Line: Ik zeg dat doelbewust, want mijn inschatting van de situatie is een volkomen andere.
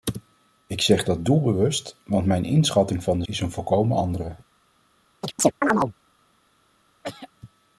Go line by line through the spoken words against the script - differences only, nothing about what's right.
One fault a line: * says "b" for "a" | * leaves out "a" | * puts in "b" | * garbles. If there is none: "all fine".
* leaves out "situatie"